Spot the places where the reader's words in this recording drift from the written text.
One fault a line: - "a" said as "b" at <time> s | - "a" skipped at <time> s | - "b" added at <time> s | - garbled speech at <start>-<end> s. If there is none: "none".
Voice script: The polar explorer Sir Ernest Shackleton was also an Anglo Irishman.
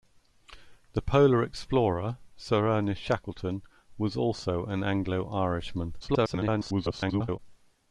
- garbled speech at 6.0-7.4 s